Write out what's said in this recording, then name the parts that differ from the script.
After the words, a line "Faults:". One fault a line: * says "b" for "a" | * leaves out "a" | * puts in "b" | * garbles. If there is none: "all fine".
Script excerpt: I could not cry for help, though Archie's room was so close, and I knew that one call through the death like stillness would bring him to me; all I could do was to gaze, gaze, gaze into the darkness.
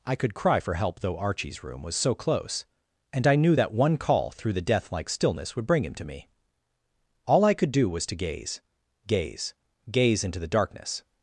I could cry for help, though Archie's room was so close, and I knew that one call through the death like stillness would bring him to me; all I could do was to gaze, gaze, gaze into the darkness.
Faults:
* leaves out "not"